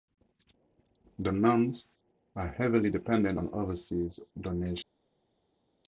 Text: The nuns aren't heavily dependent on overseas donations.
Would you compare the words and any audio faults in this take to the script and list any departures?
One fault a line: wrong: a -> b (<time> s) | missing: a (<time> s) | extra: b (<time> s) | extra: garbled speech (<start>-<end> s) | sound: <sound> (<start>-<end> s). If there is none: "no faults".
wrong: aren't -> are (2.4 s)